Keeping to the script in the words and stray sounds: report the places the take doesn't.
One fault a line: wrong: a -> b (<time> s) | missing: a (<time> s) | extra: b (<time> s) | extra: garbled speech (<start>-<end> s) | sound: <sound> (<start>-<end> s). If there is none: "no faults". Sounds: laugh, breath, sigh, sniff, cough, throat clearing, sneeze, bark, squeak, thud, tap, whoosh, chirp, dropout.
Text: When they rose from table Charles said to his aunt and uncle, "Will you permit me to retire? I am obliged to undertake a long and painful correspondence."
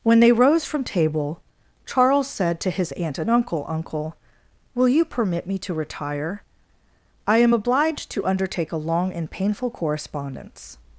extra: uncle (3.7 s)